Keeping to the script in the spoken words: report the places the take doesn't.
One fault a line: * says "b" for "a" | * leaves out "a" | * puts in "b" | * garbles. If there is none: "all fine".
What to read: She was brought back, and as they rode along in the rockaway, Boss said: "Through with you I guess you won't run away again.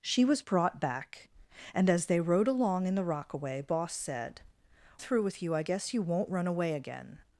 all fine